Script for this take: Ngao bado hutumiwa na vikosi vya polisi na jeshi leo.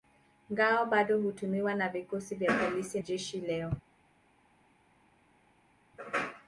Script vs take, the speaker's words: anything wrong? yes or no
yes